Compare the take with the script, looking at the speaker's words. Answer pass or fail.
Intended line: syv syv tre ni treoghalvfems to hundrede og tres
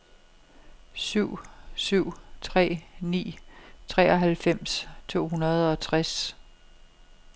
pass